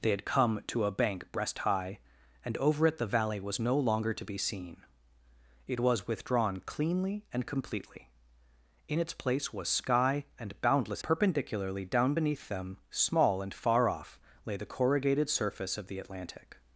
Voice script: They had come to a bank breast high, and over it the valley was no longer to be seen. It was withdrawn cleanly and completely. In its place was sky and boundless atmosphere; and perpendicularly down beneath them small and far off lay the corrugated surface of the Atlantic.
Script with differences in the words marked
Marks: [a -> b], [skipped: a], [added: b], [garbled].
They had come to a bank breast high, and over it the valley was no longer to be seen. It was withdrawn cleanly and completely. In its place was sky and boundless [skipped: atmosphere; and] perpendicularly down beneath them small and far off lay the corrugated surface of the Atlantic.